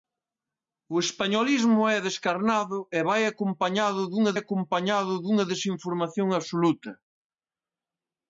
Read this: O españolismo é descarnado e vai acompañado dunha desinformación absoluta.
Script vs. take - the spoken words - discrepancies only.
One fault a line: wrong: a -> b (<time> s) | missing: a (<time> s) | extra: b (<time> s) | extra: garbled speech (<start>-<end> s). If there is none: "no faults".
extra: acompañado dunha (4.3 s)